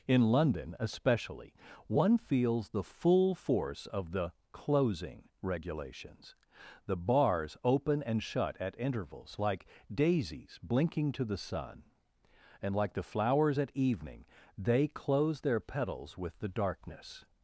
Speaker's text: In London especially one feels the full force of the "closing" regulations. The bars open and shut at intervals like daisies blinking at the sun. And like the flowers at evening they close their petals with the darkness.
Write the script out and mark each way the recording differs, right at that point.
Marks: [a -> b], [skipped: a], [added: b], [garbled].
In London especially one feels the full force of the "closing" regulations. The bars open and shut at intervals like daisies blinking [at -> to] the sun. And like the flowers at evening they close their petals with the darkness.